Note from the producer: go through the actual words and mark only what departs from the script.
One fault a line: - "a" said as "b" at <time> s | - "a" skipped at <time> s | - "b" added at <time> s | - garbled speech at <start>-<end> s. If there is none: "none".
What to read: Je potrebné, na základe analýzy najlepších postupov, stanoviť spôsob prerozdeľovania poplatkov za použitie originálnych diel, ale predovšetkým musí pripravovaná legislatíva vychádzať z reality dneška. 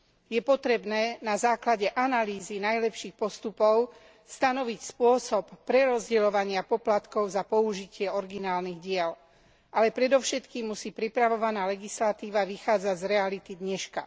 none